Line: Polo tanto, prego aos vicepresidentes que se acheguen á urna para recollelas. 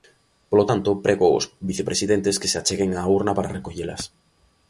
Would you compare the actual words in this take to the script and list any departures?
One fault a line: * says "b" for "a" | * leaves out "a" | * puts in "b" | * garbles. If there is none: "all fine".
all fine